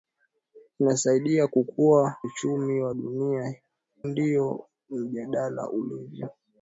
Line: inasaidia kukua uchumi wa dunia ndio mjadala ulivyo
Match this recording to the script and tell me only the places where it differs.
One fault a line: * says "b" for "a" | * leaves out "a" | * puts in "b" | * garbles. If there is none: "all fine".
all fine